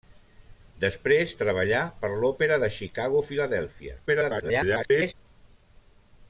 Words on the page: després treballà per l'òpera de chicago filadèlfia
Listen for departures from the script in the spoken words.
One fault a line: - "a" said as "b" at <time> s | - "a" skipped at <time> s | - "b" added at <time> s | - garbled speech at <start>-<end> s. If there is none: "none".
- garbled speech at 4.1-5.1 s